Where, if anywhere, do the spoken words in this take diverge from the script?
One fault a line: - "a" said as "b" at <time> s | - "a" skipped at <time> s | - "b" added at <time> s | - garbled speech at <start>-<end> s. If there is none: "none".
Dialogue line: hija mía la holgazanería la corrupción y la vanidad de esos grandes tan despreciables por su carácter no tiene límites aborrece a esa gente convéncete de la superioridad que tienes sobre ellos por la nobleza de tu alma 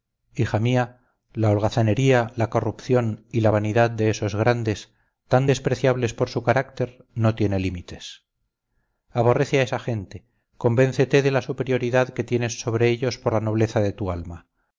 none